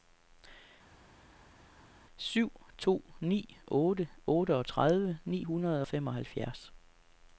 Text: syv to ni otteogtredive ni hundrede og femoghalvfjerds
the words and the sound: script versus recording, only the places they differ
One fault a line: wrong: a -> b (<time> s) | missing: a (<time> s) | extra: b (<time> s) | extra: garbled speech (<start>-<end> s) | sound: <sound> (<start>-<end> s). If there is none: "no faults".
extra: otte (3.7 s)